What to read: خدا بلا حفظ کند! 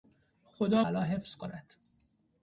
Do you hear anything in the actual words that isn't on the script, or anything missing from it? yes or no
no